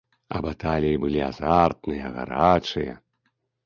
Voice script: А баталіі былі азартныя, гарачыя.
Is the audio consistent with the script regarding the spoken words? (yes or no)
yes